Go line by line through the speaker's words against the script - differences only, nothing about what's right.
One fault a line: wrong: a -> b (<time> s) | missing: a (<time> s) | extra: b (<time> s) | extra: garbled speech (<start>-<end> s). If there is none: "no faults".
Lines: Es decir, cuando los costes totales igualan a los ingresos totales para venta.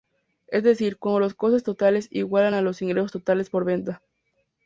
wrong: para -> por (3.5 s)